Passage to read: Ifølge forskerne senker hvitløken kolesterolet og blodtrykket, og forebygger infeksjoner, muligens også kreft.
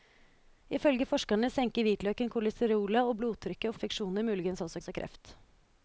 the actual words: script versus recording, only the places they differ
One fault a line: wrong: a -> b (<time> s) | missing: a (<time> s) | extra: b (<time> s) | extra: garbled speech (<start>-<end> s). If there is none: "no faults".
missing: forebygger (3.8 s)
extra: også (4.8 s)